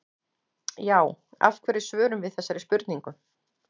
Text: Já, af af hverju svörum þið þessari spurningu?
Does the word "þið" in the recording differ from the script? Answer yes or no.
yes